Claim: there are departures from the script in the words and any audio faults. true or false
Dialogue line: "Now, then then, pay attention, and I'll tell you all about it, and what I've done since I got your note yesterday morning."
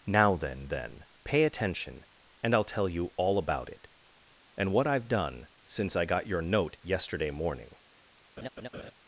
true